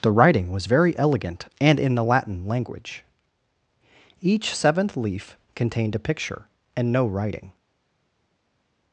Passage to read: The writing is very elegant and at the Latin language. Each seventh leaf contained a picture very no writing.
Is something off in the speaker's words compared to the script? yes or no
yes